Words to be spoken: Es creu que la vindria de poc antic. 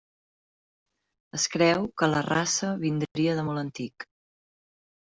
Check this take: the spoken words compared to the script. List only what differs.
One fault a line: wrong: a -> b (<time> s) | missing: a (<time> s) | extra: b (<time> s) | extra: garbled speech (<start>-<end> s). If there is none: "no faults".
extra: raça (2.3 s)
wrong: poc -> molt (3.5 s)